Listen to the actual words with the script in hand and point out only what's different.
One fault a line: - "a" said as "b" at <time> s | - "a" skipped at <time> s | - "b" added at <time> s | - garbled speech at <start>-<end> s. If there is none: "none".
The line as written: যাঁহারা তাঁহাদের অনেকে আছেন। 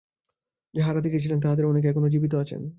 - "দেখিয়াছিলেন" added at 1.0 s
- "এখনও জীবিত" added at 1.9 s